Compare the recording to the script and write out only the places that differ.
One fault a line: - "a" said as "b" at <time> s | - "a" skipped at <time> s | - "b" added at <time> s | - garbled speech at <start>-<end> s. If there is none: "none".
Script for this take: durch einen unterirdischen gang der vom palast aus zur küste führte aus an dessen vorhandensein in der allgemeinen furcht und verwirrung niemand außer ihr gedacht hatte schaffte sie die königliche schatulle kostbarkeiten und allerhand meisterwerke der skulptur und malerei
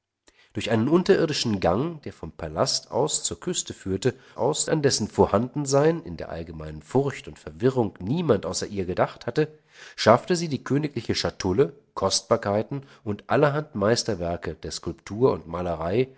none